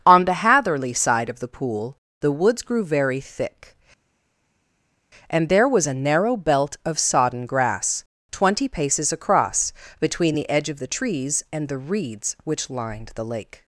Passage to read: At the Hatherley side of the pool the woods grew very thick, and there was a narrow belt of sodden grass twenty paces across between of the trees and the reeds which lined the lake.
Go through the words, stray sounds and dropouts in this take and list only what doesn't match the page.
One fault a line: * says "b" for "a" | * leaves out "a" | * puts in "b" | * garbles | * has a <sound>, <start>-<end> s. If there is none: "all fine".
* says "On" for "At"
* puts in "the edge"